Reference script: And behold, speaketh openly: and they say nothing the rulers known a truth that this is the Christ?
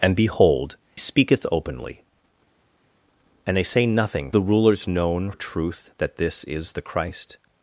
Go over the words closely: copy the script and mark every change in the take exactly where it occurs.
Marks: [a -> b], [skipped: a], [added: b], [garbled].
And behold, speaketh openly: and they say nothing the rulers known a truth that this is the Christ?